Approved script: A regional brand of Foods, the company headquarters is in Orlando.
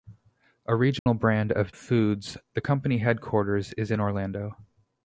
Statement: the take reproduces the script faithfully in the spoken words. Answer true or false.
true